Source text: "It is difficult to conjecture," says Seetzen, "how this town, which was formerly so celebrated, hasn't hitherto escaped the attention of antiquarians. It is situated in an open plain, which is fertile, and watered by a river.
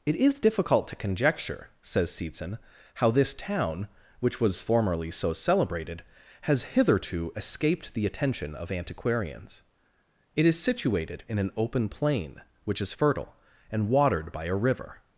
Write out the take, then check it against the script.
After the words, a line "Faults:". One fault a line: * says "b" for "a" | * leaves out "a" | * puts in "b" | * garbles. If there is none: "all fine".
"It is difficult to conjecture," says Seetzen, "how this town, which was formerly so celebrated, has hitherto escaped the attention of antiquarians. It is situated in an open plain, which is fertile, and watered by a river.
Faults:
* says "has" for "hasn't"